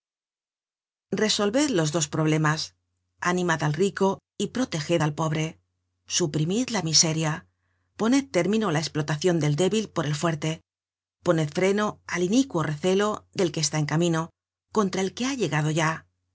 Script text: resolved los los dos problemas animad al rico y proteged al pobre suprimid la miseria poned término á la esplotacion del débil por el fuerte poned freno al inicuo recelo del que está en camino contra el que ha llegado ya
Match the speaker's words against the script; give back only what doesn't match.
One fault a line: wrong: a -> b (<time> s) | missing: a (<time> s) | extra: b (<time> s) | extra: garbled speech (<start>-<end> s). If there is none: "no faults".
missing: los (1.9 s)